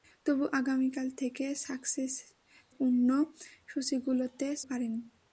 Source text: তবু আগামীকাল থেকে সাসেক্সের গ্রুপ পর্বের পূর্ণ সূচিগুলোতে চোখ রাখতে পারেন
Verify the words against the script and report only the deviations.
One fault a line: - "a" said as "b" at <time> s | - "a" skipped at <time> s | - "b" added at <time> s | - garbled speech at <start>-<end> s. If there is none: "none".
- "সাসেক্সের গ্রুপ পর্বের" skipped at 1.4 s
- "চোখ রাখতে" skipped at 4.5 s